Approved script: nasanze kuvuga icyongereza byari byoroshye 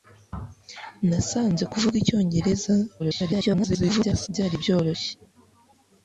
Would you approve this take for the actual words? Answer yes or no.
no